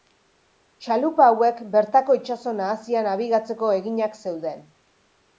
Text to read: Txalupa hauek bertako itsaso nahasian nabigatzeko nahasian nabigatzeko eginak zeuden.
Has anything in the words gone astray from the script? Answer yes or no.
yes